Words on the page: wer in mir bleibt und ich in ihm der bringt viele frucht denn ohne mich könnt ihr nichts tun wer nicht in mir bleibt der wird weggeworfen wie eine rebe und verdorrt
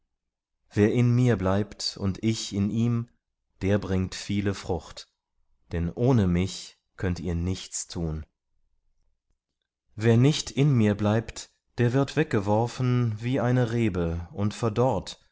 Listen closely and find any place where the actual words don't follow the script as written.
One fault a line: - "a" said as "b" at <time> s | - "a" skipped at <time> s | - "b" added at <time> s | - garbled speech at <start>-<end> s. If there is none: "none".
none